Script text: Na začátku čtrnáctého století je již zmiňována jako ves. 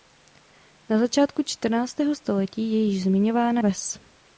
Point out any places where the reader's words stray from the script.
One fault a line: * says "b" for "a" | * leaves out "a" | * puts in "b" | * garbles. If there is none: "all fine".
* leaves out "jako"